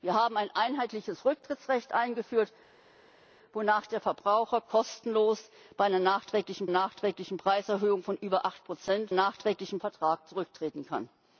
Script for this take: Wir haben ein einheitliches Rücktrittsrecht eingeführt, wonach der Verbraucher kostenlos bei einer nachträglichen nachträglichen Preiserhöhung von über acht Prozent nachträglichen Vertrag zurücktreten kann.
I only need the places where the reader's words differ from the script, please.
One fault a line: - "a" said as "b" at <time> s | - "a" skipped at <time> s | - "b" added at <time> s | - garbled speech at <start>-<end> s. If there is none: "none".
none